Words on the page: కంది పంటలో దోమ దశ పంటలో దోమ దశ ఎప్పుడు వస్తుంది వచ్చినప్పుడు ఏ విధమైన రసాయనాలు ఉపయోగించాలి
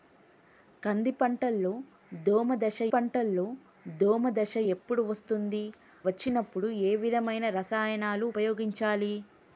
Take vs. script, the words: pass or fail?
pass